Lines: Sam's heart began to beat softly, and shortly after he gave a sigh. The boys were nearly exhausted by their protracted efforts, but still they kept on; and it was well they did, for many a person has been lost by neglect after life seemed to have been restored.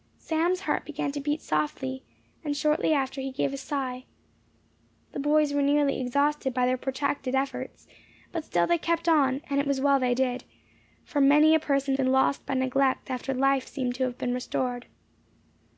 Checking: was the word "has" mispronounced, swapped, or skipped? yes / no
yes